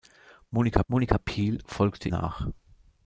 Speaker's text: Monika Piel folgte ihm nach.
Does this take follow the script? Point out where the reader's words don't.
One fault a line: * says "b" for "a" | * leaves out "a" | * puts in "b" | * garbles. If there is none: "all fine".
* puts in "monika"
* leaves out "ihm"